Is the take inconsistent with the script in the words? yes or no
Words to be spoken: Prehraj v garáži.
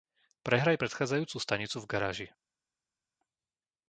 yes